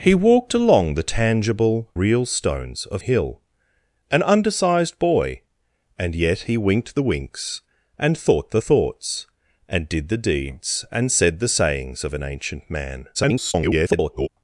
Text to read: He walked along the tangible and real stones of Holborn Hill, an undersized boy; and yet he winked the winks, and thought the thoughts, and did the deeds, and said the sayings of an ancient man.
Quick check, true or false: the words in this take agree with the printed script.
false